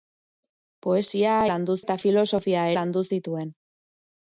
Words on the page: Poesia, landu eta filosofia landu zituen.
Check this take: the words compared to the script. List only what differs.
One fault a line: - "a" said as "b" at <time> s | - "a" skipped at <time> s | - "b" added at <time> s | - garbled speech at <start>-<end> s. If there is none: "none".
none